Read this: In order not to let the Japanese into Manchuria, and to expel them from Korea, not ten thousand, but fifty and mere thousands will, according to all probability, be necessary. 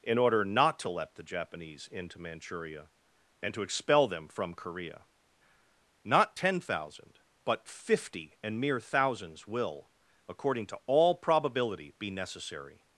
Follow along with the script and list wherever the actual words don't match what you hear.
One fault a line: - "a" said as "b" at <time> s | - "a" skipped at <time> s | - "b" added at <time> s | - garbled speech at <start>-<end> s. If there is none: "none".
none